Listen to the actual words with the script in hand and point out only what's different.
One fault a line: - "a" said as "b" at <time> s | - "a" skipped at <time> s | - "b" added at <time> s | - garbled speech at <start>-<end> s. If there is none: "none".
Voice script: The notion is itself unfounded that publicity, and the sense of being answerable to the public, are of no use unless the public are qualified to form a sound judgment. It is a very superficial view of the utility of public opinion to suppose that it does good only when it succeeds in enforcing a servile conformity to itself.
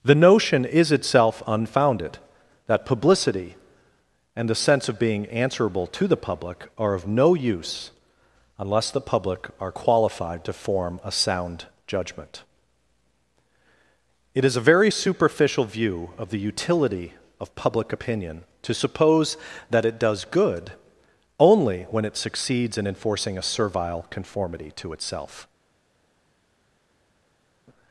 none